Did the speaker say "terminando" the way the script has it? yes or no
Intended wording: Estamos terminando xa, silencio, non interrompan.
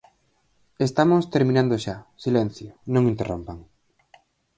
yes